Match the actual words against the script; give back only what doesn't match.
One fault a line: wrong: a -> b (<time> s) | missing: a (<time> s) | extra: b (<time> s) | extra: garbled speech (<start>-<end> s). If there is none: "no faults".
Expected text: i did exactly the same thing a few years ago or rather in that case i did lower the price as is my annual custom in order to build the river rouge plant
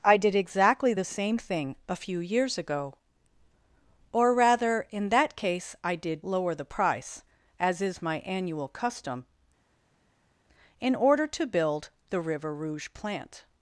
no faults